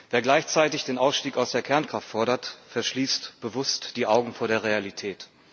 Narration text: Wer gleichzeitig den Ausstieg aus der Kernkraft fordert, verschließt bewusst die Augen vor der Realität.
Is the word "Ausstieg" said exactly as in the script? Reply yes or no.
yes